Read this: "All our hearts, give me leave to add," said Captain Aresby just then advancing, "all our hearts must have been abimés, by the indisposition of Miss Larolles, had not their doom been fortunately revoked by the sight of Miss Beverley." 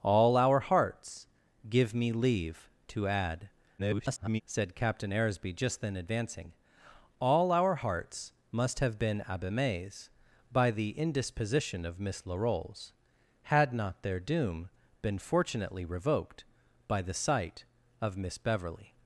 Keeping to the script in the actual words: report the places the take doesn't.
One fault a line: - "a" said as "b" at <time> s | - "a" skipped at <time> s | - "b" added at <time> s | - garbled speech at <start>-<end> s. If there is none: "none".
- garbled speech at 3.8-4.4 s